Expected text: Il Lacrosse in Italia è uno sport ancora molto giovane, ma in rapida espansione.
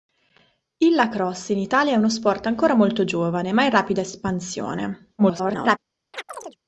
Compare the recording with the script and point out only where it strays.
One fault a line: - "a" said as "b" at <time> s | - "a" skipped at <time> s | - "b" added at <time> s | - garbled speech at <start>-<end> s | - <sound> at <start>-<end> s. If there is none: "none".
- garbled speech at 5.2-5.8 s
- chirp at 6.1-6.6 s